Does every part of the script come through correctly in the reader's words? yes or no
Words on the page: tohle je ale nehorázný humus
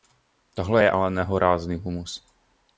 yes